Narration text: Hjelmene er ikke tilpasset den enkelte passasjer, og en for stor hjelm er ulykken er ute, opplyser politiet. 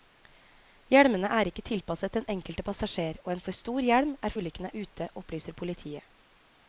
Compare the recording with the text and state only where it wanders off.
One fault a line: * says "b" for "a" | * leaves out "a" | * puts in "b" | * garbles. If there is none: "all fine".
all fine